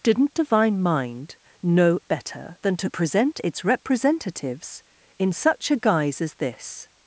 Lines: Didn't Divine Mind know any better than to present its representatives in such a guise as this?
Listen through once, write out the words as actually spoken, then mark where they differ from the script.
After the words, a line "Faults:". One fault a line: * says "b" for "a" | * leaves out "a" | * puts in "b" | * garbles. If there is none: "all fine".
Didn't Divine Mind know better than to present its representatives in such a guise as this?
Faults:
* leaves out "any"